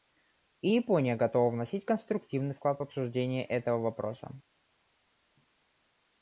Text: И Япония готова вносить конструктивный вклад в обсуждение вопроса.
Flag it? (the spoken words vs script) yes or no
yes